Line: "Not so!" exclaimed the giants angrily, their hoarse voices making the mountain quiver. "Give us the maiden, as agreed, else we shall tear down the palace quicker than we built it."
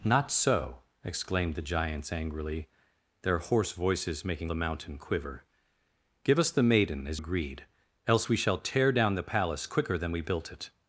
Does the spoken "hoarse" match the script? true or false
true